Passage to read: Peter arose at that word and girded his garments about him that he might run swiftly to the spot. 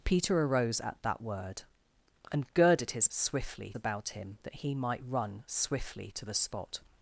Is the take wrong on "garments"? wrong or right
wrong